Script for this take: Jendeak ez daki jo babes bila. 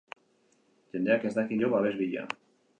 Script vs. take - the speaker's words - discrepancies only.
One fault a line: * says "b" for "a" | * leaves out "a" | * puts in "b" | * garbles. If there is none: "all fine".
all fine